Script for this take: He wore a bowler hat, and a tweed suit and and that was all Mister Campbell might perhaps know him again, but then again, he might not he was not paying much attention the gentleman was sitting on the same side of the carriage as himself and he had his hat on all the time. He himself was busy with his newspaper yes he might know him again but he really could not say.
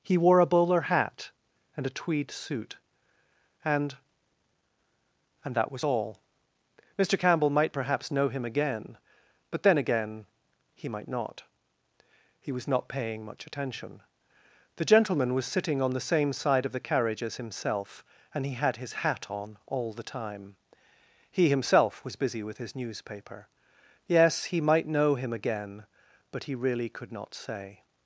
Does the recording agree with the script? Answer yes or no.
yes